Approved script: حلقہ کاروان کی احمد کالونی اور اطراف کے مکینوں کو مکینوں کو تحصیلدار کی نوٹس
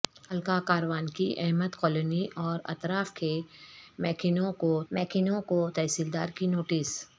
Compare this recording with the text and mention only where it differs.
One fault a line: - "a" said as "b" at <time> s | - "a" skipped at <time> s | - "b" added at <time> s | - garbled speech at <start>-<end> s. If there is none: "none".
none